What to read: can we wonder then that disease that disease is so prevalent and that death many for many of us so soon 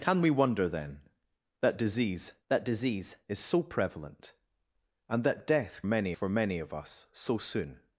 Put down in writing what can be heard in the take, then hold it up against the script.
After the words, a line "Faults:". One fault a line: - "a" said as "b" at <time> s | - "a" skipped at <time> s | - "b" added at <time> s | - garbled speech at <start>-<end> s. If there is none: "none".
can we wonder then that disease that disease is so prevalent and that death many for many of us so soon
Faults:
none